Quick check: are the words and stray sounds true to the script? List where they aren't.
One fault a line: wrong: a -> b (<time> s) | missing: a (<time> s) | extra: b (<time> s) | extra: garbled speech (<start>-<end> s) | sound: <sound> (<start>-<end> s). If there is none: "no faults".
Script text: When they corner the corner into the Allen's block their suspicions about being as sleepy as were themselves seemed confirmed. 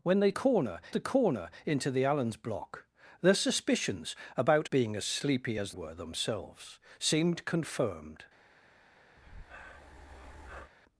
sound: breath (9.2-10.7 s)